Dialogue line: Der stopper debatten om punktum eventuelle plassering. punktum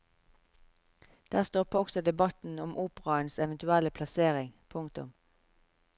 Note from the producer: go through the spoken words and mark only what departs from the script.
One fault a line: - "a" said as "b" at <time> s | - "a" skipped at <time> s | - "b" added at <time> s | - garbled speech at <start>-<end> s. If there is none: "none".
- "også" added at 1.8 s
- "punktum" said as "operaens" at 2.8 s